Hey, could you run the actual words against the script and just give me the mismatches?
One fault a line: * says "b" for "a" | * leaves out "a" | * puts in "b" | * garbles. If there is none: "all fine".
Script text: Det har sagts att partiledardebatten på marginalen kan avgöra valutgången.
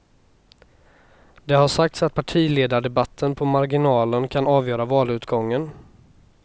all fine